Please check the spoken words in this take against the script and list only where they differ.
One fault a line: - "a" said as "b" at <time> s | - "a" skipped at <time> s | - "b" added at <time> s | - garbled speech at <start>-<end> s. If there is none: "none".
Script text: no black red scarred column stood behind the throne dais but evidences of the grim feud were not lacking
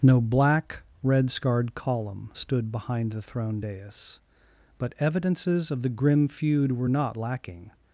none